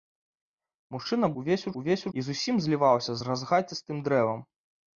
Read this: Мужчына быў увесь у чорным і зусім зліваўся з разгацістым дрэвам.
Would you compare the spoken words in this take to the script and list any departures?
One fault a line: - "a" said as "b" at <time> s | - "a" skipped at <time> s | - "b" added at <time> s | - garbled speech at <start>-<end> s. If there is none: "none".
- "быў" skipped at 1.3 s
- "чорным" said as "увесь" at 1.8 s